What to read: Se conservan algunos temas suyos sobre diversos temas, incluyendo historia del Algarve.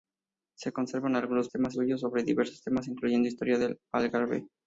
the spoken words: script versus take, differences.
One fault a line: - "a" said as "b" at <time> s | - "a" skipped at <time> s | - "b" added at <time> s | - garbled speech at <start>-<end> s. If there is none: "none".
none